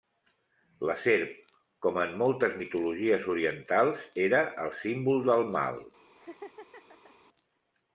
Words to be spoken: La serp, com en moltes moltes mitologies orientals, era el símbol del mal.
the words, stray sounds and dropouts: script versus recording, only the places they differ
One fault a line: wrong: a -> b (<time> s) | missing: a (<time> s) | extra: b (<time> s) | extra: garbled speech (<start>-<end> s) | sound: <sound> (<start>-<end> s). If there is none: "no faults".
missing: moltes (2.6 s)
sound: laugh (6.2-7.2 s)